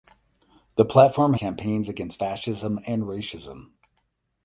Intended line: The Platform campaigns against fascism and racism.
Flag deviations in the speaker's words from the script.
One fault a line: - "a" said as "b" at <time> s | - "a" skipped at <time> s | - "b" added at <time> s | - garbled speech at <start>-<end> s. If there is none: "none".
none